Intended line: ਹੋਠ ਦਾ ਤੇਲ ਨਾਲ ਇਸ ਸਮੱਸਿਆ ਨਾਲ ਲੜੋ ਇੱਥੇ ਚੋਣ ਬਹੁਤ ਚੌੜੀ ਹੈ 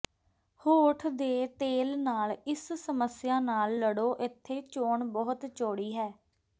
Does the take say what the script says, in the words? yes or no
no